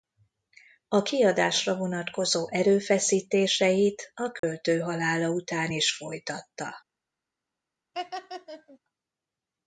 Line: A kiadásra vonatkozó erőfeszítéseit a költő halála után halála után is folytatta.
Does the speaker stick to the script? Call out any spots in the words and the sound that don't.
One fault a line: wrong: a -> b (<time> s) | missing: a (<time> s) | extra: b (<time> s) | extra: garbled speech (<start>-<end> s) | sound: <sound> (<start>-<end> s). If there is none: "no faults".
sound: dropout (4.4-4.4 s)
missing: halála után (5.7 s)
sound: laugh (7.9-8.8 s)